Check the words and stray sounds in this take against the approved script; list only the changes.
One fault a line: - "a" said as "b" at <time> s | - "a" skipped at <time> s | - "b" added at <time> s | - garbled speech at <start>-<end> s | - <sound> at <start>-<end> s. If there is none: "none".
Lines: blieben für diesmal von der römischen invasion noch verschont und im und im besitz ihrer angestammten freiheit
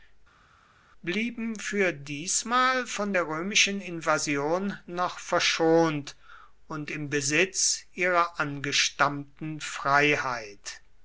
- "und im" skipped at 7.1 s